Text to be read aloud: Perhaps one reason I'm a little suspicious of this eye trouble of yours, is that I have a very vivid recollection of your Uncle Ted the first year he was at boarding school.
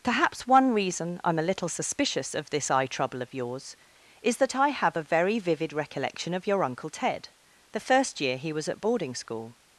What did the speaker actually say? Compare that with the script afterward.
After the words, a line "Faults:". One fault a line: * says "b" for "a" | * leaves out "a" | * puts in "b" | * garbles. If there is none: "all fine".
Perhaps one reason I'm a little suspicious of this eye trouble of yours, is that I have a very vivid recollection of your Uncle Ted the first year he was at boarding school.
Faults:
all fine